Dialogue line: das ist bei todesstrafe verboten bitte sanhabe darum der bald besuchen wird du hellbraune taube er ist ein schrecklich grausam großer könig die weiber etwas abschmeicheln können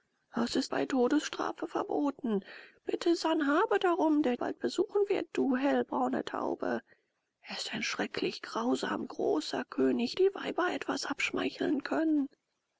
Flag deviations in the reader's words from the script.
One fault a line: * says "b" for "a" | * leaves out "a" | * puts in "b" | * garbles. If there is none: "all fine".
all fine